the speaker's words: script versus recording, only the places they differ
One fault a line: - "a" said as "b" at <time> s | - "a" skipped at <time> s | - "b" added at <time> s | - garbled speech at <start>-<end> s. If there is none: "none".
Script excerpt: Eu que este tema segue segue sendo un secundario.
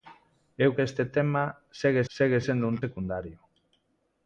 none